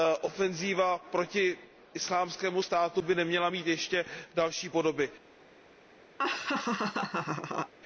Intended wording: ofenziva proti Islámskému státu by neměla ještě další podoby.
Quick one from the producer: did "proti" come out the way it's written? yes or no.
yes